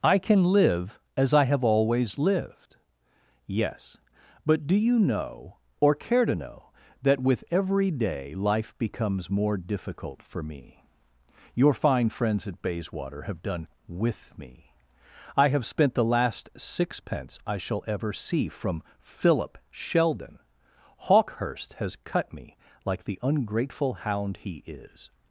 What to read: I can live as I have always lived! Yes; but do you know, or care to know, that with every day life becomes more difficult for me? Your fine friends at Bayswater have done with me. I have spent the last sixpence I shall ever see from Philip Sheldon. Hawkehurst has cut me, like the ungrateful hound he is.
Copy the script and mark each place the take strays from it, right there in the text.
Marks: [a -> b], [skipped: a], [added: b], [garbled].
I can live as I have always lived! Yes; but do you know, or care to know, that with every day life becomes more difficult for me? Your fine friends at Bayswater have done with me. I have spent the last sixpence I shall ever see from Philip Sheldon. Hawkehurst has cut me, like the ungrateful hound he is.